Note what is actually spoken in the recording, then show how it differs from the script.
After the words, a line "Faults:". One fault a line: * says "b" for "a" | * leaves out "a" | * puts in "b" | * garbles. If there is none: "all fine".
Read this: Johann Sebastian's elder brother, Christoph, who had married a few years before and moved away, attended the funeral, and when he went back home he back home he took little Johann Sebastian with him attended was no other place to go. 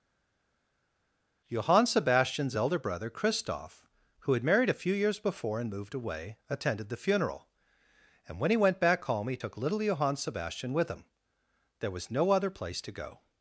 Johann Sebastian's elder brother, Christoph, who had married a few years before and moved away, attended the funeral, and when he went back home he took little Johann Sebastian with him there was no other place to go.
Faults:
* leaves out "back home he"
* says "there" for "attended"